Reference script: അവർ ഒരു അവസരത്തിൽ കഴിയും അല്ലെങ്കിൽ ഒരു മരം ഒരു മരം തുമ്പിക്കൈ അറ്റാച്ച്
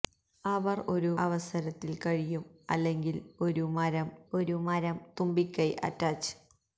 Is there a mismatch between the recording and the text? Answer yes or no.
no